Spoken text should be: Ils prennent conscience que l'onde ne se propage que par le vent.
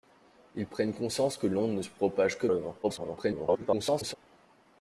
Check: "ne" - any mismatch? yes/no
no